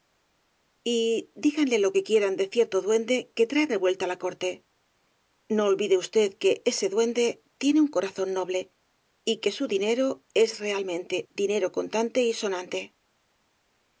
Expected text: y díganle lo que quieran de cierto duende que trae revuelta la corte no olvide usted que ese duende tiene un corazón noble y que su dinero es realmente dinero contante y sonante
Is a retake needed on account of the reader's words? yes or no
no